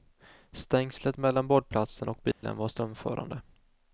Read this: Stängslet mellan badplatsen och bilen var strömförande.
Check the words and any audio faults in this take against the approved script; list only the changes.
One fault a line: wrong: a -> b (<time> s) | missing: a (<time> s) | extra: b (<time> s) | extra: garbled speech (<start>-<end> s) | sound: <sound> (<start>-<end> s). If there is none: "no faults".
sound: dropout (2.3-2.4 s)